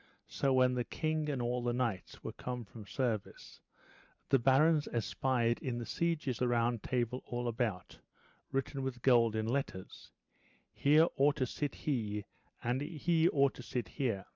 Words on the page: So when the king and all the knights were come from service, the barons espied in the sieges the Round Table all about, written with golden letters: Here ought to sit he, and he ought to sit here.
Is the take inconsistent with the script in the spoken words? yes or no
no